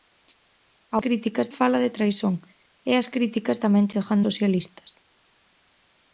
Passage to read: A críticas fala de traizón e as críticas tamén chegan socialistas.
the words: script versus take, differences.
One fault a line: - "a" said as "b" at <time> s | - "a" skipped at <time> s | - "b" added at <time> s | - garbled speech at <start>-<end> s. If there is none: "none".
none